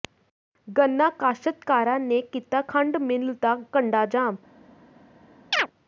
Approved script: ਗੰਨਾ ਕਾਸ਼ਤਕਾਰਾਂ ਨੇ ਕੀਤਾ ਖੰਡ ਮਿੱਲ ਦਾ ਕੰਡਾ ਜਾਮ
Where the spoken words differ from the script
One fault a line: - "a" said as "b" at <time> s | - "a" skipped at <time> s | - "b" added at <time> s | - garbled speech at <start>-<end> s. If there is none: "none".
none